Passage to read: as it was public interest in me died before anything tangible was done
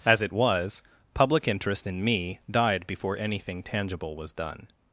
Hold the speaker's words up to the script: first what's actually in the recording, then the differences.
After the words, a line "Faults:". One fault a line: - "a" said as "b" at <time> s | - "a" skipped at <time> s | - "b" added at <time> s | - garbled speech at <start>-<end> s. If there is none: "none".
as it was public interest in me died before anything tangible was done
Faults:
none